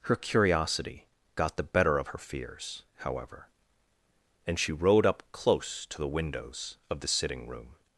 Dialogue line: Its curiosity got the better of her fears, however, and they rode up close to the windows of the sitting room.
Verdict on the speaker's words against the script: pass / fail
fail